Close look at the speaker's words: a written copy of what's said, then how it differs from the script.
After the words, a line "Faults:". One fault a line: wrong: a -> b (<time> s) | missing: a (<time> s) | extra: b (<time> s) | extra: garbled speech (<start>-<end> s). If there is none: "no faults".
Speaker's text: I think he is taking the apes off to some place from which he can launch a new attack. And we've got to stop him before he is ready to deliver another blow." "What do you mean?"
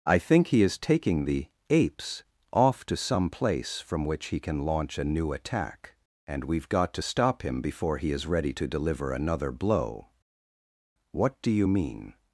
I think he is taking the apes off to some place from which he can launch a new attack. And we've got to stop him before he is ready to deliver another blow." "What do you mean?"
Faults:
no faults